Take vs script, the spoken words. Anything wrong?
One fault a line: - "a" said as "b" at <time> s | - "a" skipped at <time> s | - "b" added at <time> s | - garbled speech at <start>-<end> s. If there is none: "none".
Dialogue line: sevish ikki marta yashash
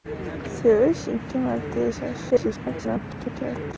- garbled speech at 2.3-3.7 s